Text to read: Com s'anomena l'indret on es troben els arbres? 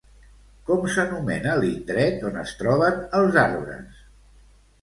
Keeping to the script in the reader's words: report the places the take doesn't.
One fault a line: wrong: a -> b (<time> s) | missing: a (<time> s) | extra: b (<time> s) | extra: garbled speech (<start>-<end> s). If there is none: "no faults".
no faults